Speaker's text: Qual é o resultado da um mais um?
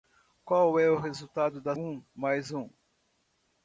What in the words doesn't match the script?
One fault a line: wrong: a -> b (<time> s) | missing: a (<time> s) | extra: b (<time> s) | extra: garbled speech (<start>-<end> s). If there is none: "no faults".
no faults